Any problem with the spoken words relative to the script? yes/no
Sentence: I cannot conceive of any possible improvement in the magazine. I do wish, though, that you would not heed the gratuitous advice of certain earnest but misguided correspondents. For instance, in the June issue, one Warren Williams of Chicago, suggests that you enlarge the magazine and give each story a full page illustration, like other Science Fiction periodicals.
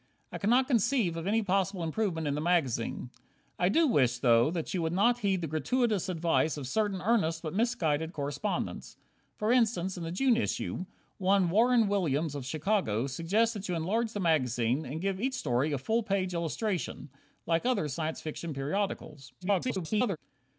yes